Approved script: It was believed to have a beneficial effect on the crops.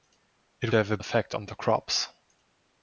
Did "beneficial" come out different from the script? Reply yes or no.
yes